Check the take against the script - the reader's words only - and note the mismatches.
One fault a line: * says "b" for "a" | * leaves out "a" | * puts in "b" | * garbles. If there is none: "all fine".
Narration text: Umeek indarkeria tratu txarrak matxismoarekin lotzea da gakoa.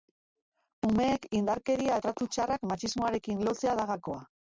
all fine